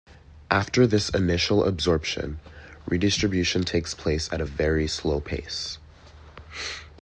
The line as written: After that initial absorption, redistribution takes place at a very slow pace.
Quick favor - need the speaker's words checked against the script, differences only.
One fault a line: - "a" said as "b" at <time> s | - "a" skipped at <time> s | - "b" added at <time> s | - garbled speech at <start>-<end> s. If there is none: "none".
- "that" said as "this" at 0.9 s